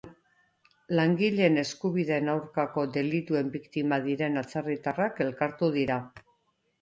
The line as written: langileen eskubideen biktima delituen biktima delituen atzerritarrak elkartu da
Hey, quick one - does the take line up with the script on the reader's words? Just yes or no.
no